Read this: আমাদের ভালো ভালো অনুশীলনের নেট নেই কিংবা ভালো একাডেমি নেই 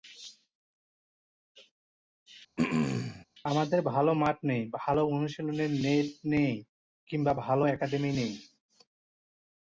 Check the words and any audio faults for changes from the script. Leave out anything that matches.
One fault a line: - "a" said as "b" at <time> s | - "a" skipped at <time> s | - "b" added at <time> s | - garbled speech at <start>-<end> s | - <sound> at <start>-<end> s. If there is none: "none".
- throat clearing at 2.6-3.3 s
- "মাঠ নেই" added at 4.1 s